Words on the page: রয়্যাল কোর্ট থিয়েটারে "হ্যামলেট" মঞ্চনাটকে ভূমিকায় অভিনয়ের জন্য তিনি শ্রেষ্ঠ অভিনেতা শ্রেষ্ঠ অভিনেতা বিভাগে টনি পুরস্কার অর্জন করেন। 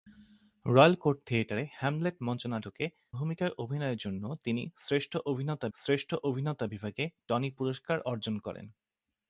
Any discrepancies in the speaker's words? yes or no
no